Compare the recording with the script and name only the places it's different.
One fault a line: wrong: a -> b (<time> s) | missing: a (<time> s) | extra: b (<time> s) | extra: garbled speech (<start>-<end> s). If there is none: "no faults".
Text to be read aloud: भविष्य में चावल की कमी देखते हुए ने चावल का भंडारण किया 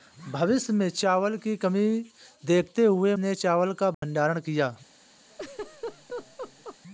no faults